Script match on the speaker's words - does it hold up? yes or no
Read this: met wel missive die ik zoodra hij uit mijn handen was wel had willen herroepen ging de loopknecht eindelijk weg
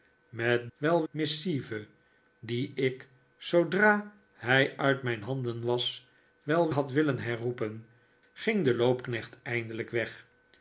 yes